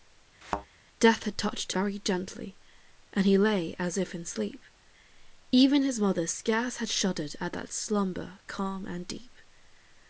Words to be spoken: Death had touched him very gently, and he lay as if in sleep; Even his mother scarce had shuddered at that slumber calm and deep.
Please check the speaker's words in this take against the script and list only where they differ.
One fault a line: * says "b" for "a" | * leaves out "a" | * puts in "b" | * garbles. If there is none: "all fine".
* leaves out "him"